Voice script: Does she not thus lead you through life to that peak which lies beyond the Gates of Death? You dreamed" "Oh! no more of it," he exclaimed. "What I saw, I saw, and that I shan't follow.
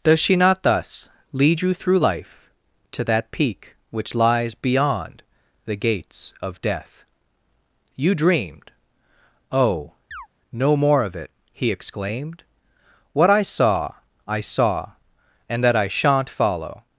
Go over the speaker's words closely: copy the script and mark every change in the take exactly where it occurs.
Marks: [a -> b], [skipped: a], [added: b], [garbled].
Does she not thus lead you through life to that peak which lies beyond the Gates of Death? You dreamed" "Oh! no more of it," he exclaimed. "What I saw, I saw, and that I shan't follow.